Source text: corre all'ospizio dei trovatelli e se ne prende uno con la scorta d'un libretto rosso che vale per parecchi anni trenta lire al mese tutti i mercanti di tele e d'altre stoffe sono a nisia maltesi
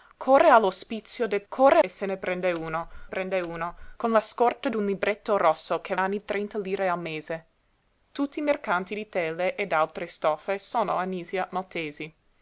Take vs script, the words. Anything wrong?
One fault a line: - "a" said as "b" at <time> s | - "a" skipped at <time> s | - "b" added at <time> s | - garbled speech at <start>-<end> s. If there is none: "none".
- "trovatelli" said as "corre" at 1.5 s
- "prende uno" added at 3.1 s
- "vale per parecchi" skipped at 6.0 s